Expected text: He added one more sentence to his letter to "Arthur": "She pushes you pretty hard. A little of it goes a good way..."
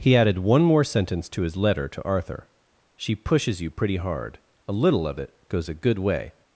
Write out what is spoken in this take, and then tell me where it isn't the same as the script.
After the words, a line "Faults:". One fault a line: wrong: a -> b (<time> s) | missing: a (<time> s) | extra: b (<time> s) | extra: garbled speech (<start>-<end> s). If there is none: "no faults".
He added one more sentence to his letter to "Arthur": "She pushes you pretty hard. A little of it goes a good way..."
Faults:
no faults